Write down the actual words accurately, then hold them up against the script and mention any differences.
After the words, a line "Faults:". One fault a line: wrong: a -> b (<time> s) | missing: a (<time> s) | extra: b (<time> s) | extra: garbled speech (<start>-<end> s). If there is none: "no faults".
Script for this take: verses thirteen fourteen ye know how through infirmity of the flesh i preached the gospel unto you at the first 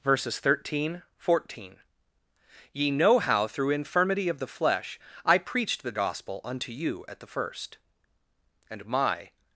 verses thirteen fourteen ye know how through infirmity of the flesh i preached the gospel unto you at the first and my
Faults:
extra: and my (8.7 s)